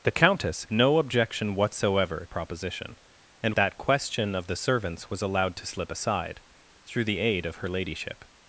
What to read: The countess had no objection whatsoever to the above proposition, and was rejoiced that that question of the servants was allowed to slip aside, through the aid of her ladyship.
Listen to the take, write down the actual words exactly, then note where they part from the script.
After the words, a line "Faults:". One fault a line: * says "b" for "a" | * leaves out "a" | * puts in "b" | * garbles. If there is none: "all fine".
The countess no objection whatsoever proposition, and that question of the servants was allowed to slip aside, through the aid of her ladyship.
Faults:
* leaves out "had"
* leaves out "to the above"
* leaves out "was rejoiced that"